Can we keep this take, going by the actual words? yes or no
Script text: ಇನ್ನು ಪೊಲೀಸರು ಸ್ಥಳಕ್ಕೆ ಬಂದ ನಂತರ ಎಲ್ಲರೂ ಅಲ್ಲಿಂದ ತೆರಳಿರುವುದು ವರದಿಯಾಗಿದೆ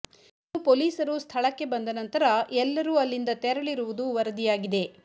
yes